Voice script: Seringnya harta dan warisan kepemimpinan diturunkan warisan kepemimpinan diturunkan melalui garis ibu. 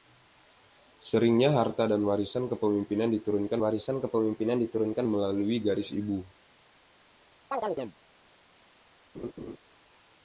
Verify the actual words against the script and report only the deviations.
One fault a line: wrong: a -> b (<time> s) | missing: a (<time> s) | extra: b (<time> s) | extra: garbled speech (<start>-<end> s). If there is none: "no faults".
no faults